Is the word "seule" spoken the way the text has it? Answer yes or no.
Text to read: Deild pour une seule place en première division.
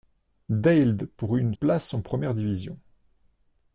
no